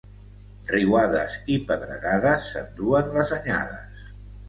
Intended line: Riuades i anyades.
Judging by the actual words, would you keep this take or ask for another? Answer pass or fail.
fail